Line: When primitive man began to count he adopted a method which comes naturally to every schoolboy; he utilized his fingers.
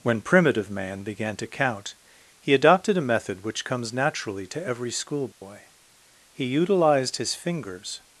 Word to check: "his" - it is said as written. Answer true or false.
true